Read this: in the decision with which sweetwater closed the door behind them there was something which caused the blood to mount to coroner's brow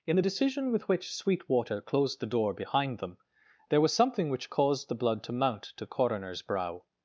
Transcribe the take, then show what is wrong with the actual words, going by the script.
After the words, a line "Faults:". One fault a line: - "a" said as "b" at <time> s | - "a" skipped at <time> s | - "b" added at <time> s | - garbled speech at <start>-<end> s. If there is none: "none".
in the decision with which sweetwater closed the door behind them there was something which caused the blood to mount to coroner's brow
Faults:
none